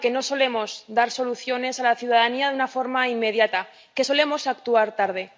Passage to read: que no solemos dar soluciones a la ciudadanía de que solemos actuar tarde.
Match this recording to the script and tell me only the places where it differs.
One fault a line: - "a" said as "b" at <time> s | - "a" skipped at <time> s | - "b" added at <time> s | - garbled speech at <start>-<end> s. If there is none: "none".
- "una forma inmediata" added at 2.5 s